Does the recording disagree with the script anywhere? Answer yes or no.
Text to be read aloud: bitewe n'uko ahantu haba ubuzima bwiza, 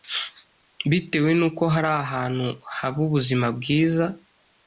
yes